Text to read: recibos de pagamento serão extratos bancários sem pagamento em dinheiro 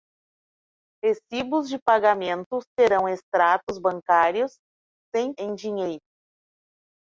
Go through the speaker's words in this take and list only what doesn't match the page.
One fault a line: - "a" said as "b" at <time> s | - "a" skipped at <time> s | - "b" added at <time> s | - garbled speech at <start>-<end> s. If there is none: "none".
- "pagamento" skipped at 5.3 s